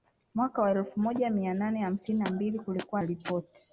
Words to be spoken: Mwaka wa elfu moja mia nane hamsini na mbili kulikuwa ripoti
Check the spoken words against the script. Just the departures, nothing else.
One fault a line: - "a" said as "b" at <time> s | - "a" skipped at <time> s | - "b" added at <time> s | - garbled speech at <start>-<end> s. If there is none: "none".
none